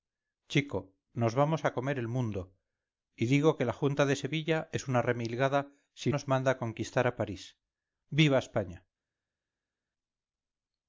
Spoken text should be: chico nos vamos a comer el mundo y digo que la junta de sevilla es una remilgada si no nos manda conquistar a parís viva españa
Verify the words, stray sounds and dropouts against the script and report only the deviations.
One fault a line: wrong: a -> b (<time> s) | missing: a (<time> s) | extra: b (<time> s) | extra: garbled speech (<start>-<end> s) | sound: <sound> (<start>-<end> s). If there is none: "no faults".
missing: no (6.1 s)